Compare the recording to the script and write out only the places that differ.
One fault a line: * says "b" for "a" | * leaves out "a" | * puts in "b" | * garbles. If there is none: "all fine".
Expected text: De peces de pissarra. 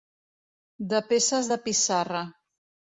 all fine